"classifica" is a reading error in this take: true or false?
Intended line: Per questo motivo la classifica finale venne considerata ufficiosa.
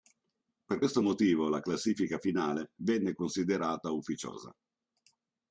false